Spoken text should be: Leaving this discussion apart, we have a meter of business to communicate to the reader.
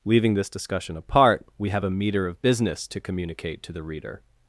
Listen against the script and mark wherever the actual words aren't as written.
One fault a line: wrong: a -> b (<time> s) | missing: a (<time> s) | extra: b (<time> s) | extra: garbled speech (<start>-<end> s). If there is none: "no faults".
no faults